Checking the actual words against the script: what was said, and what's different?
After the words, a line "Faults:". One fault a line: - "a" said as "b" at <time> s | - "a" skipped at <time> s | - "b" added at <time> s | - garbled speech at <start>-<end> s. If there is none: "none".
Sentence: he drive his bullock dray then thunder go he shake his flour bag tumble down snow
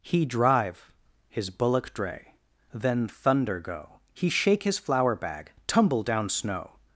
he drive his bullock dray then thunder go he shake his flour bag tumble down snow
Faults:
none